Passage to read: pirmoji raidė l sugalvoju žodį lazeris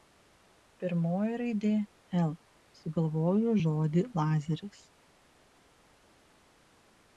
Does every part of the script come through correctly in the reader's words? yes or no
yes